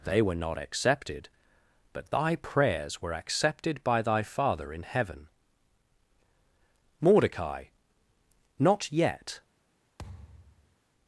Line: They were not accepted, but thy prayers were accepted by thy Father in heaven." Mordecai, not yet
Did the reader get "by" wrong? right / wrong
right